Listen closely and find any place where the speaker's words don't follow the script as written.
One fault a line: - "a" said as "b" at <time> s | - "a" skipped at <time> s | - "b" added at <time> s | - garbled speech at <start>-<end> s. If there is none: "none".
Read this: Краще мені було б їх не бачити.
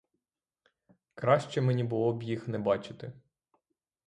none